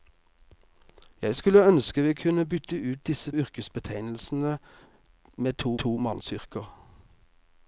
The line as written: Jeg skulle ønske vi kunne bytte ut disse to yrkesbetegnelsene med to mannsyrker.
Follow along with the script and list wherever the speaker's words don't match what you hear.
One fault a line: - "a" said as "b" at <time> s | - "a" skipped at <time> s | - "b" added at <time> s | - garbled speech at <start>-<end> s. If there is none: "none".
- "to" skipped at 3.3 s
- "to" added at 5.7 s